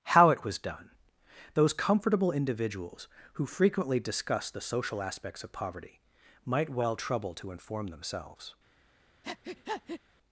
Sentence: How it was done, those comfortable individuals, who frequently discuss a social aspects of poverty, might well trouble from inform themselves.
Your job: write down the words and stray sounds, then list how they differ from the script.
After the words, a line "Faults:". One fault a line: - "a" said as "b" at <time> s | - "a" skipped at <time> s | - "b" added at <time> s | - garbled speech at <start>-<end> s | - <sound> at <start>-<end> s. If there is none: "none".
How it was done, those comfortable individuals, who frequently discuss the social aspects of poverty, might well trouble to inform themselves.
Faults:
- "a" said as "the" at 4.5 s
- "from" said as "to" at 7.4 s
- breath at 9.2-10.0 s